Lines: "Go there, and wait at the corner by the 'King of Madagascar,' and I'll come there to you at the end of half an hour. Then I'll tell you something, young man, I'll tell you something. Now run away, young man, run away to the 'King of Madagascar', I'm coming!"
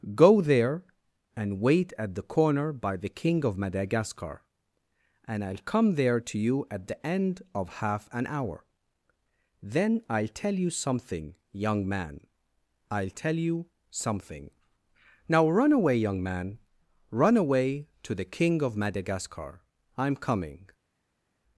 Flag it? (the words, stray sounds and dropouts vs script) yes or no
no